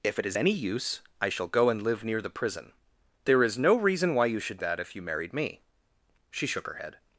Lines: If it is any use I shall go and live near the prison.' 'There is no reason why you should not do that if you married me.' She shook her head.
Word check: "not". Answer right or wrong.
wrong